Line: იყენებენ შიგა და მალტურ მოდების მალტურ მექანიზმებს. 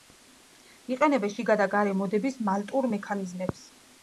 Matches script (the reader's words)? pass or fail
fail